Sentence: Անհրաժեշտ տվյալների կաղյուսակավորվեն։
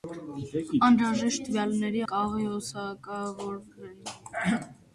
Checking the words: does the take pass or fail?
pass